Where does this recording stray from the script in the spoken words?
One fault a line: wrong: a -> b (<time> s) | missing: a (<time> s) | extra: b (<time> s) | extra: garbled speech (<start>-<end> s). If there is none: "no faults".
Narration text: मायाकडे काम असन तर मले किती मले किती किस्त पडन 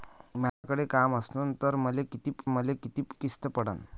no faults